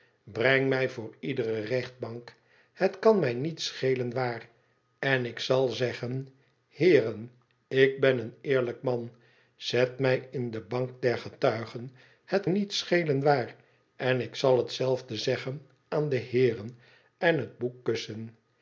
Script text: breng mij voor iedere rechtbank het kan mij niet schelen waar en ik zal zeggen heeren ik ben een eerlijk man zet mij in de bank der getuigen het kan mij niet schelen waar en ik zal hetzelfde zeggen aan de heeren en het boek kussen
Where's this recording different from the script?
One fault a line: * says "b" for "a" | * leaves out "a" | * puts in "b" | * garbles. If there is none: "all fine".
* leaves out "kan mij"